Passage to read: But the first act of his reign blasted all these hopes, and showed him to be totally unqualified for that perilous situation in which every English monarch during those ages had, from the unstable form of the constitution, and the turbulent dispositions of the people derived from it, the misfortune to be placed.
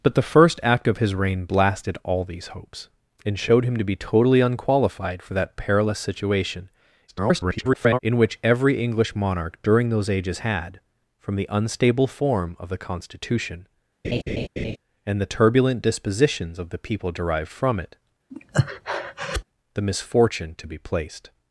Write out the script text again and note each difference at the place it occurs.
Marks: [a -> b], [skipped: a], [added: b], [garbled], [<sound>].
But the first act of his reign blasted all these hopes, and showed him to be totally unqualified for that perilous situation [garbled] in which every English monarch during those ages had, from the unstable form of the constitution, [laugh] and the turbulent dispositions of the people derived from it, [breath] the misfortune to be placed.